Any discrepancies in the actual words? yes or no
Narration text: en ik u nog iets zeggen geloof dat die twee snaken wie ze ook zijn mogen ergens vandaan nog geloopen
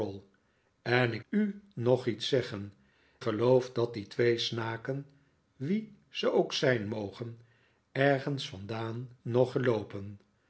no